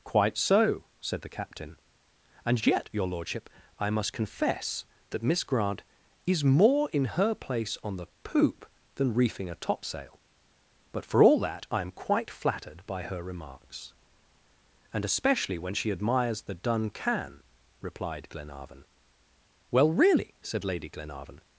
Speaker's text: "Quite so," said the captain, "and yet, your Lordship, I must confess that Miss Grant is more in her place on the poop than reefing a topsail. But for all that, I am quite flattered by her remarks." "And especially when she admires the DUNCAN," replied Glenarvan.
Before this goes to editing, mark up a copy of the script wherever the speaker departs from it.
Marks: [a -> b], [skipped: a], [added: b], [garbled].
"Quite so," said the captain, "and yet, your Lordship, I must confess that Miss Grant is more in her place on the poop than reefing a topsail. But for all that, I am quite flattered by her remarks." "And especially when she admires the DUNCAN," replied Glenarvan. [added: Well really said Lady Glenarvan]